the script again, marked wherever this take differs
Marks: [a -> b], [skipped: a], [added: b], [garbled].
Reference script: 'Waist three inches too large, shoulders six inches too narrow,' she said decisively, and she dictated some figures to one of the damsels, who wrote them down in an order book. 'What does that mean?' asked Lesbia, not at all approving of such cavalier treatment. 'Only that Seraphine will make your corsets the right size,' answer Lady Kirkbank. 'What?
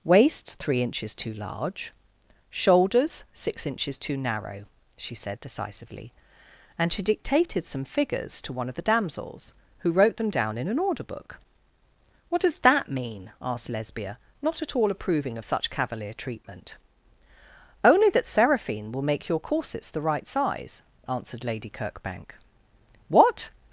'Waist three inches too large, shoulders six inches too narrow,' she said decisively, and she dictated some figures to one of the damsels, who wrote them down in an order book. 'What does that mean?' asked Lesbia, not at all approving of such cavalier treatment. 'Only that Seraphine will make your corsets the right size,' [answer -> answered] Lady Kirkbank. 'What?